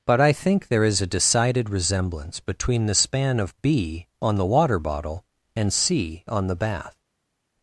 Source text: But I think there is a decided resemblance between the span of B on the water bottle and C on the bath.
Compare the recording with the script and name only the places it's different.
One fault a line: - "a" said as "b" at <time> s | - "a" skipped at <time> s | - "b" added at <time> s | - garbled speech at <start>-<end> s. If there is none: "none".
none